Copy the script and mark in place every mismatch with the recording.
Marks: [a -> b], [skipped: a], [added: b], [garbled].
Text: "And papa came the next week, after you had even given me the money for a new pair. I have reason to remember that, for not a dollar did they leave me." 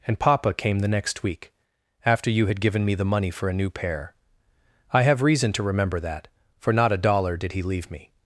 "And papa came the next week, after you had [skipped: even] given me the money for a new pair. I have reason to remember that, for not a dollar did [they -> he] leave me."